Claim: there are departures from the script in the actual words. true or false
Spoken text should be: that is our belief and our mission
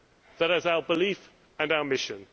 false